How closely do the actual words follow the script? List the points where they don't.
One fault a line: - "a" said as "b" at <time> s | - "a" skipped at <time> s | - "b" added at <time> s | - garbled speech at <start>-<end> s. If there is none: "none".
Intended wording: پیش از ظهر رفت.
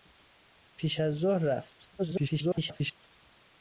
- garbled speech at 2.0-3.2 s